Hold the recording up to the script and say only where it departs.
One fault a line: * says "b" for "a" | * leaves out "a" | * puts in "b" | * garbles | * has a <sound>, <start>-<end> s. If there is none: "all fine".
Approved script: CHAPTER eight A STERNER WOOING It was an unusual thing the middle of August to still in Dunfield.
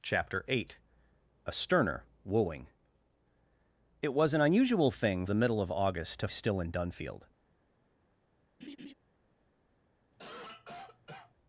* has a laugh, 8.6-8.9 s
* has a cough, 10.1-11.3 s